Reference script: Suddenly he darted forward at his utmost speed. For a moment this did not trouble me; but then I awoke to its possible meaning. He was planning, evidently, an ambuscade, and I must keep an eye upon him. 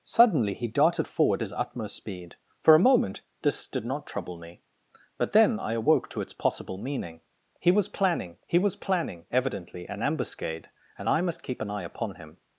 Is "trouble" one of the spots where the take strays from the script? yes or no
no